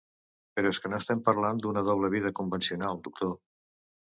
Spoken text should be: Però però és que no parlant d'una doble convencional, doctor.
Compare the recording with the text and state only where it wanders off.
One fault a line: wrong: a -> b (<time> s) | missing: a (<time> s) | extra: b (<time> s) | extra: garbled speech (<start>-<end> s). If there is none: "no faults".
missing: però (0.7 s)
extra: estem (1.0 s)
extra: vida (2.1 s)